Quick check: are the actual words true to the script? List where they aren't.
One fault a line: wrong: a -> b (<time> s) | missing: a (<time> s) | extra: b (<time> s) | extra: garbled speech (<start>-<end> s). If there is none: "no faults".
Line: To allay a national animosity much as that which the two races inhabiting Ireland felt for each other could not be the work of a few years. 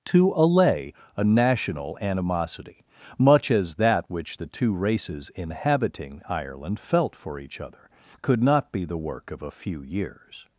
no faults